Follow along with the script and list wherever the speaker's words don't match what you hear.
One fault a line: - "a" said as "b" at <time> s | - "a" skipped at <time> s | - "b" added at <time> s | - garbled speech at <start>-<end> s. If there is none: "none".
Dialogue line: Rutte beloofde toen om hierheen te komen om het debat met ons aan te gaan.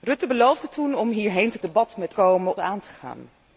- "komen om het" skipped at 1.6 s
- "ons" said as "komen" at 2.1 s